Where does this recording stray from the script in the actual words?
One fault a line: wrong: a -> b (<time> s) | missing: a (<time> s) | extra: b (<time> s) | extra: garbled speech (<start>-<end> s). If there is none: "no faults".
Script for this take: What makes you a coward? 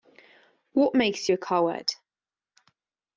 no faults